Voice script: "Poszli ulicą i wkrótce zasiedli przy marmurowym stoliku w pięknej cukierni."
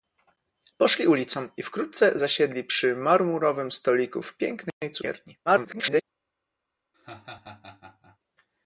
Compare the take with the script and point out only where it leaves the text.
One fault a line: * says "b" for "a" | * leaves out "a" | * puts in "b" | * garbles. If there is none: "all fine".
* garbles